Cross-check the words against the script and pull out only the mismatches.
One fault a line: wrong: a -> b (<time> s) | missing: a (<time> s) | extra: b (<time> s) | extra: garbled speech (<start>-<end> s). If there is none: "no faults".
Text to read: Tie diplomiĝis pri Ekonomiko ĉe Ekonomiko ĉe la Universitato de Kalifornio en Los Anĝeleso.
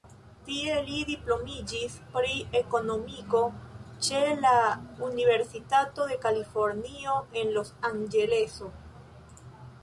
extra: li (0.8 s)
missing: Ekonomiko ĉe (4.2 s)